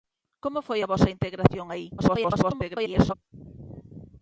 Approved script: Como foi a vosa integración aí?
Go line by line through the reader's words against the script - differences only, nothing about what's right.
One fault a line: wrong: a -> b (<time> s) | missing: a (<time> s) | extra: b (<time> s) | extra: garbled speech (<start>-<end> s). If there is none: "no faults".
extra: garbled speech (2.0-3.1 s)